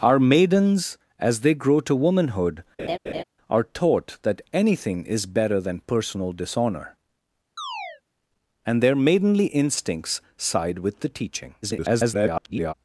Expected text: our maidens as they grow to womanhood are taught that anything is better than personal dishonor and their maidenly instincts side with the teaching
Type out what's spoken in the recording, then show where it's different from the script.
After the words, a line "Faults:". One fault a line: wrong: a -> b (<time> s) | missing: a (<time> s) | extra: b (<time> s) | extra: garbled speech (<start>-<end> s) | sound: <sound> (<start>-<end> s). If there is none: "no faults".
our maidens as they grow to womanhood are taught that anything is better than personal dishonor and their maidenly instincts side with the teaching [garbled]
Faults:
sound: laugh (2.8-3.2 s)
sound: chirp (7.6-8.0 s)
extra: garbled speech (11.6-12.7 s)